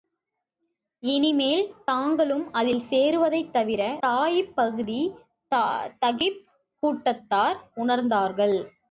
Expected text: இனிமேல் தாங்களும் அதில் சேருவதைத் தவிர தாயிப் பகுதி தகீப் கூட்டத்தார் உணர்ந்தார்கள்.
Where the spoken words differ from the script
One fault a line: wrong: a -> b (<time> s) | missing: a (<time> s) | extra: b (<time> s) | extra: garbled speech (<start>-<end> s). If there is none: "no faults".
no faults